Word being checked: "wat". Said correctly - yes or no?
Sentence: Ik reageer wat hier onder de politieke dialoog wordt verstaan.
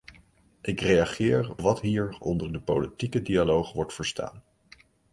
yes